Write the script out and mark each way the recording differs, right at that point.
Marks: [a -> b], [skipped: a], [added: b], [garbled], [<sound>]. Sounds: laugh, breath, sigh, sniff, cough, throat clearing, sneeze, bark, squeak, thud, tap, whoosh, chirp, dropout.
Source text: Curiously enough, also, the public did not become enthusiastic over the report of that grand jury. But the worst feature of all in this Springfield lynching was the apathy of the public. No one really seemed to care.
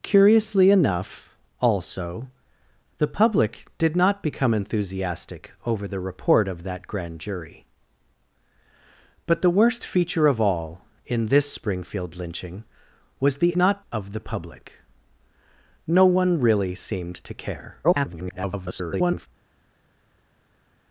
Curiously enough, also, the public did not become enthusiastic over the report of that grand jury. But the worst feature of all in this Springfield lynching was the [apathy -> not] of the public. No one really seemed to care. [garbled]